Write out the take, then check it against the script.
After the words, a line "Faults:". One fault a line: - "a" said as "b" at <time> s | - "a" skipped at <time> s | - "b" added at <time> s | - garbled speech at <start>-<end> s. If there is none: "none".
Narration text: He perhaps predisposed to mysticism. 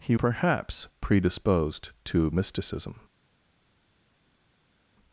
He perhaps predisposed to mysticism.
Faults:
none